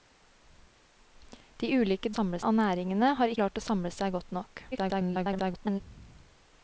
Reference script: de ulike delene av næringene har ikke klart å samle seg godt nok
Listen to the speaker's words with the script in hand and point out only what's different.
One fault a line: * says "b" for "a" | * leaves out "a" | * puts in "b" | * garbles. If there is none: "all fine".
* says "samle" for "delene"
* leaves out "ikke"
* garbles